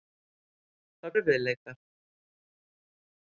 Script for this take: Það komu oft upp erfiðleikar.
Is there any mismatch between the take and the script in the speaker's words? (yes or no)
yes